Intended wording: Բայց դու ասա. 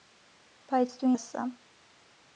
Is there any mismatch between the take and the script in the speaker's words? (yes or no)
no